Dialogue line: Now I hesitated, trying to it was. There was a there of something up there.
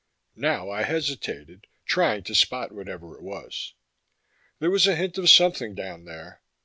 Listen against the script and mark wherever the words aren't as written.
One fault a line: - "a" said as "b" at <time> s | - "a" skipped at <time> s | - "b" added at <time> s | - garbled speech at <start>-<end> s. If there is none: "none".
- "spot whatever" added at 2.3 s
- "there" said as "hint" at 4.9 s
- "up" said as "down" at 5.7 s